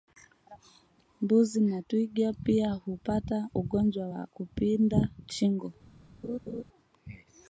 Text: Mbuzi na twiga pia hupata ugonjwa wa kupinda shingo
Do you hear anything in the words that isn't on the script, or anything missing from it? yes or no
no